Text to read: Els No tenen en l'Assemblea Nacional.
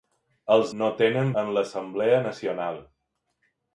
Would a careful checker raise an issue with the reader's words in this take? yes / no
no